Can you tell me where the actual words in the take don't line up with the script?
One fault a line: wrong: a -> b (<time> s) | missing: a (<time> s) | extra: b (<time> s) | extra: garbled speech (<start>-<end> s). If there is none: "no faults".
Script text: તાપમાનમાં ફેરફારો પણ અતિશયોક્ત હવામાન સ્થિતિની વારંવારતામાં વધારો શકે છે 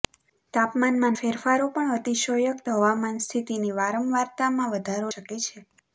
no faults